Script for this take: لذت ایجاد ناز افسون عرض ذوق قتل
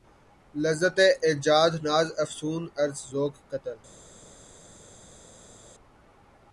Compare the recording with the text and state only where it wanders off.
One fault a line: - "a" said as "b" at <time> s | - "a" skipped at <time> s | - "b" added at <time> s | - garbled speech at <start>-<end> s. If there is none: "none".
none